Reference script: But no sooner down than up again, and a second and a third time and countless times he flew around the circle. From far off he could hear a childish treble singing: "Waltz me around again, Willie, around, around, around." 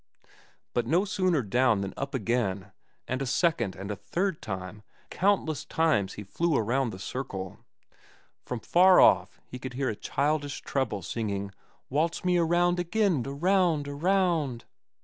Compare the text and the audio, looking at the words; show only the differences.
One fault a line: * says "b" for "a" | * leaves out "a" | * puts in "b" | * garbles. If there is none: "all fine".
* leaves out "and"
* leaves out "Willie around"